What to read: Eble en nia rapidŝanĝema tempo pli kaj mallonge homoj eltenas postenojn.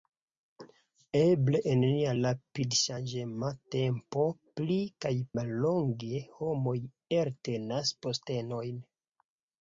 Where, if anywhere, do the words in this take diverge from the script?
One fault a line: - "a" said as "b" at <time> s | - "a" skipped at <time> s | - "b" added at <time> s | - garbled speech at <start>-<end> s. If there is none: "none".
none